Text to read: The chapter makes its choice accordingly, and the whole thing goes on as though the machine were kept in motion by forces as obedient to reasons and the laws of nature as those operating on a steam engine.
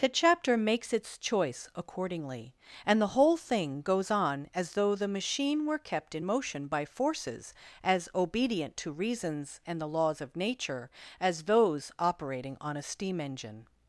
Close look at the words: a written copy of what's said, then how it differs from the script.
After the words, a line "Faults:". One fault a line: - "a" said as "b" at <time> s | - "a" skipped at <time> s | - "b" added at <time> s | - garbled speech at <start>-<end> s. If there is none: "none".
The chapter makes its choice accordingly, and the whole thing goes on as though the machine were kept in motion by forces as obedient to reasons and the laws of nature as those operating on a steam engine.
Faults:
none